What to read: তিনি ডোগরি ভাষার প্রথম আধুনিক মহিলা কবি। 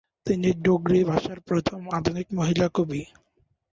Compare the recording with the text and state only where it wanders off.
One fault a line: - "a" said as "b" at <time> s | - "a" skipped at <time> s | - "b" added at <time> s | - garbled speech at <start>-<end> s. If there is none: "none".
none